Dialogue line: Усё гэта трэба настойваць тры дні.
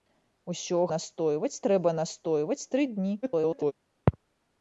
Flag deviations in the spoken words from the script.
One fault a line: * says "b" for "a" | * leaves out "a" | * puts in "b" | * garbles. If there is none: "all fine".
* says "настойваць" for "гэта"
* garbles